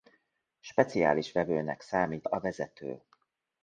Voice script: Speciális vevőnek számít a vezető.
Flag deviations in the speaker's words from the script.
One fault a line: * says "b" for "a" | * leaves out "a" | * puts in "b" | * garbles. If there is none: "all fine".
all fine